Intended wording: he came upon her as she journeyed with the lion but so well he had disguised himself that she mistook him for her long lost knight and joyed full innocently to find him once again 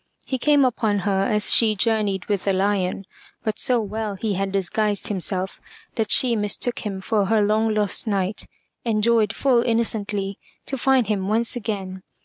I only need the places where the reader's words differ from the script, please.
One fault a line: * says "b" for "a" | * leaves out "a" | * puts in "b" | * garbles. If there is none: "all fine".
all fine